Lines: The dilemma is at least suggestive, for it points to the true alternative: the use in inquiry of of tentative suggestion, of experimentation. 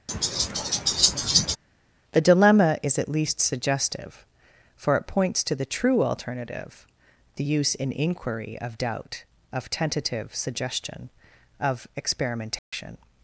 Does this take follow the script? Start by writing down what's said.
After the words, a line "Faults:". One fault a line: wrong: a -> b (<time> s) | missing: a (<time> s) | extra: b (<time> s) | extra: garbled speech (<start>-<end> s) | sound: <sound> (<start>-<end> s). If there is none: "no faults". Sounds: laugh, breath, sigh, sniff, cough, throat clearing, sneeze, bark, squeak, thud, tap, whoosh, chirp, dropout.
The dilemma is at least suggestive, for it points to the true alternative: the use in inquiry of doubt, of tentative suggestion, of experimentation.
Faults:
sound: laugh (0.1-1.6 s)
extra: doubt (8.8 s)
sound: dropout (12.6-12.7 s)